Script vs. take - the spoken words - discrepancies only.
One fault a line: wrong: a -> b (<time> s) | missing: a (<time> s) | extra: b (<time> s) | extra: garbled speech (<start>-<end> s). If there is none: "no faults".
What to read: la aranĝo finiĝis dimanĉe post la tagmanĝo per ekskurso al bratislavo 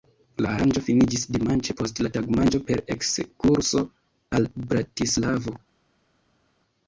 no faults